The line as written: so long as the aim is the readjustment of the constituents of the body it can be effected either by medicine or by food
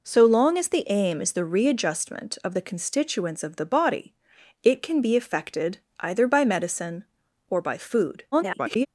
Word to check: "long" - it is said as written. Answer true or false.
true